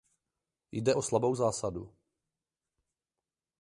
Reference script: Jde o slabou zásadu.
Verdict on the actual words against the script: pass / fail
pass